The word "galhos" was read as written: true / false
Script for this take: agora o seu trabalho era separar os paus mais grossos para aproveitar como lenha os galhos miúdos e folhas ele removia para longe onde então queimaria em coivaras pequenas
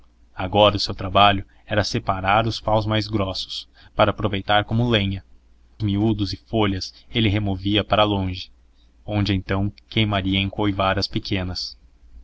false